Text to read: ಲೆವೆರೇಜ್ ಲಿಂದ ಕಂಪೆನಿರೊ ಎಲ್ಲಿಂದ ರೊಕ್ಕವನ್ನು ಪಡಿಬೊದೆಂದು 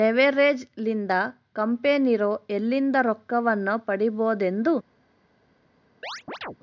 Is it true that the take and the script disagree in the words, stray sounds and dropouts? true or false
true